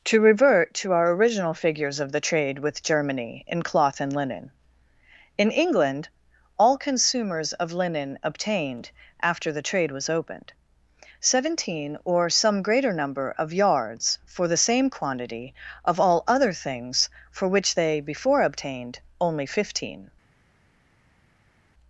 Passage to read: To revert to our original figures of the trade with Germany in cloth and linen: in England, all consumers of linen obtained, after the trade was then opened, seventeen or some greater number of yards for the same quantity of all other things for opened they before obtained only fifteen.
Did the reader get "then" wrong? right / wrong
wrong